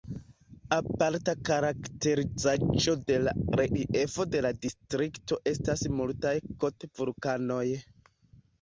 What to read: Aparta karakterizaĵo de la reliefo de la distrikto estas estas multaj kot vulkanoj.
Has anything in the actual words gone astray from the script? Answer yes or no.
yes